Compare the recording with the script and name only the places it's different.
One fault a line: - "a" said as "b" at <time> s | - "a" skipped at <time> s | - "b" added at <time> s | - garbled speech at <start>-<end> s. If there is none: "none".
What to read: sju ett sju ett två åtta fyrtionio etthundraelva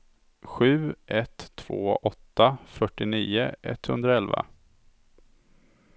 - "sju ett" skipped at 1.5 s